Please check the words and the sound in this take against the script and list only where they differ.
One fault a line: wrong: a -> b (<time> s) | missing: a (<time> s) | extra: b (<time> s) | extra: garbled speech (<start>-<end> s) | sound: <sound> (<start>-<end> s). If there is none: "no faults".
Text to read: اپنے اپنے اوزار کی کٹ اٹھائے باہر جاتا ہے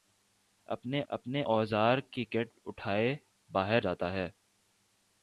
no faults